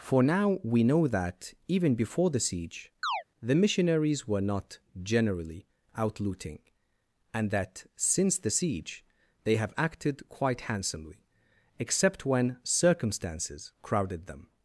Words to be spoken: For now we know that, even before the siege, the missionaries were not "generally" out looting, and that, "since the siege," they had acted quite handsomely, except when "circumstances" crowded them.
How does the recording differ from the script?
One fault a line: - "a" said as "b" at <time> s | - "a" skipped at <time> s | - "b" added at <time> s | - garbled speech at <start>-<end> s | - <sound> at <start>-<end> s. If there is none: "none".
- chirp at 3.0-3.2 s
- "had" said as "have" at 9.6 s